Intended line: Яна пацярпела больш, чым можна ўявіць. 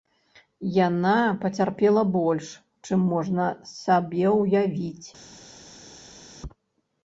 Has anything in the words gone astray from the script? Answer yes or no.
yes